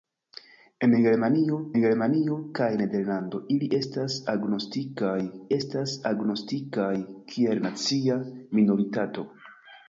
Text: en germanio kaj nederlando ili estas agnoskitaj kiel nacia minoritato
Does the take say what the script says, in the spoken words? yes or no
no